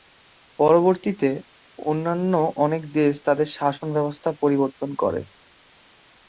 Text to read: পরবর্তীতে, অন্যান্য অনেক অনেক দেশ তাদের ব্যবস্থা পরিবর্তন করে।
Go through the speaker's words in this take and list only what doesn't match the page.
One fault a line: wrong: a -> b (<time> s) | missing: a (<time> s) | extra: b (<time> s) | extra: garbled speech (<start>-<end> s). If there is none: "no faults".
missing: অনেক (2.8 s)
extra: শাসন (3.6 s)